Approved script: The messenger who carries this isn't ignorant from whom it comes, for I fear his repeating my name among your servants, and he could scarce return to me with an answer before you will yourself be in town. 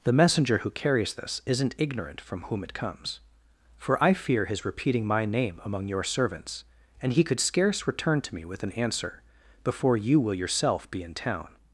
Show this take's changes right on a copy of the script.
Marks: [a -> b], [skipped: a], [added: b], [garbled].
The messenger who carries this isn't ignorant from whom it comes, for I fear his repeating my name among your servants, and he could scarce return to me with an answer before you will yourself be in town.